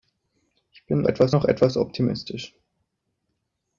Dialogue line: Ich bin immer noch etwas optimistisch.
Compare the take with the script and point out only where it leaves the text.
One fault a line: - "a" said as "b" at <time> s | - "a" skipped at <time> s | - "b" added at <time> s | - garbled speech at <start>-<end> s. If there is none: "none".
- "immer" said as "etwas" at 1.0 s